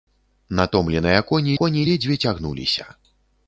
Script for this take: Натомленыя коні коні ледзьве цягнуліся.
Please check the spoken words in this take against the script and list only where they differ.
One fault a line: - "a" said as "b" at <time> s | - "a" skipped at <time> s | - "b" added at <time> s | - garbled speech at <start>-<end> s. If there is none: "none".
none